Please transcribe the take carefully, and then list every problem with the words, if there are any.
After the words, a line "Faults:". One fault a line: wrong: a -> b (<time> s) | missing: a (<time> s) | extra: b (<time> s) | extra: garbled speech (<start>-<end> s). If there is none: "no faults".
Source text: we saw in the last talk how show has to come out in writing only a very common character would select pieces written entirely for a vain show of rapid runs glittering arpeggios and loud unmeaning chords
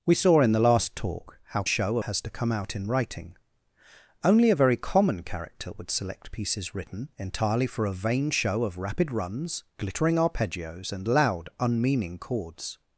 we saw in the last talk how show has to come out in writing only a very common character would select pieces written entirely for a vain show of rapid runs glittering arpeggios and loud unmeaning chords
Faults:
no faults